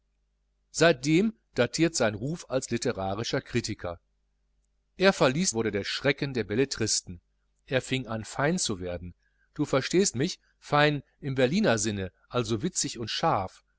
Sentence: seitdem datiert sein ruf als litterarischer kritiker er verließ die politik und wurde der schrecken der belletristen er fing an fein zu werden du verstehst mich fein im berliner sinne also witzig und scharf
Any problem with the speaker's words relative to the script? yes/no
yes